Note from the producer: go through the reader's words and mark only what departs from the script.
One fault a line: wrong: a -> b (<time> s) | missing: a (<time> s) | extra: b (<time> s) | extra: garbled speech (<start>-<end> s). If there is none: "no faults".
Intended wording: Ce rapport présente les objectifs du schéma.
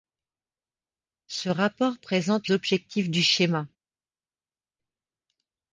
missing: les (2.5 s)